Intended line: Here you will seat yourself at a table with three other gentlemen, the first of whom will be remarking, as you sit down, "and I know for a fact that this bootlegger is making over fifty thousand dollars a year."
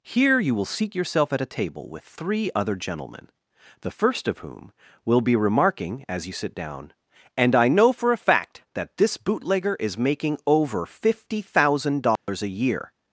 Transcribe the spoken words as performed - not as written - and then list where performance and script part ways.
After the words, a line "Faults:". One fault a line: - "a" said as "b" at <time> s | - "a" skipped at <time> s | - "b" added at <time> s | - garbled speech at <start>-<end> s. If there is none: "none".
Here you will seat yourself at a table with three other gentlemen, the first of whom will be remarking, as you sit down, "and I know for a fact that this bootlegger is making over fifty thousand dollars a year."
Faults:
none